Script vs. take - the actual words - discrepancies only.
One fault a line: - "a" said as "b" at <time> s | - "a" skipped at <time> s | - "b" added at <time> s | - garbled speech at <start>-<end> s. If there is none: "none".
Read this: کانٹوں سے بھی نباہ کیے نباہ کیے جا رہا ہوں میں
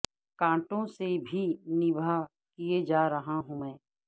- "نباہ کیے" skipped at 2.8 s